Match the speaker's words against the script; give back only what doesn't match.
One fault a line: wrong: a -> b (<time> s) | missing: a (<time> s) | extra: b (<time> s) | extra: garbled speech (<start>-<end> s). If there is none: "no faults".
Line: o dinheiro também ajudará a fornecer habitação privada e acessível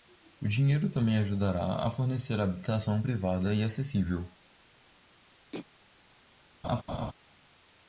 no faults